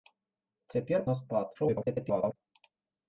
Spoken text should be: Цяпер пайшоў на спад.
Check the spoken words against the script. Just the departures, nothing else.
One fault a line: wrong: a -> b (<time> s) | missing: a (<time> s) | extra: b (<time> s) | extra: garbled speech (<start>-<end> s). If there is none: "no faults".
missing: пайшоў (1.1 s)
extra: garbled speech (1.5-2.4 s)